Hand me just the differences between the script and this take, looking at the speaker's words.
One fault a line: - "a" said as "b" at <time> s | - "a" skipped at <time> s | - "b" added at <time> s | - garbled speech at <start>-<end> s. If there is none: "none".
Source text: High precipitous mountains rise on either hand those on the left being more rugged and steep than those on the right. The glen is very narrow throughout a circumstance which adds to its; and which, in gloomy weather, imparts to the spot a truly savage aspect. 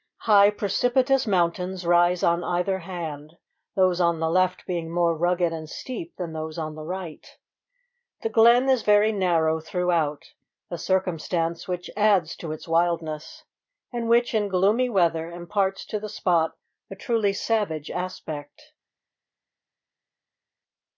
- "wildness" added at 12.7 s